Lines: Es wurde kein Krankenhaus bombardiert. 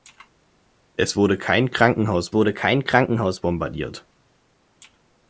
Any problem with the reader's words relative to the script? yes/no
yes